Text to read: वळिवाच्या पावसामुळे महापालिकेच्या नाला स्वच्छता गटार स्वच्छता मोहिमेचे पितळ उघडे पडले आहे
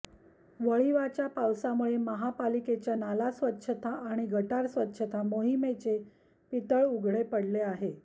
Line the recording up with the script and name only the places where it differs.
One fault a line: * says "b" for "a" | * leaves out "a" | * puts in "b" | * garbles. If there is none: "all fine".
* puts in "आणि"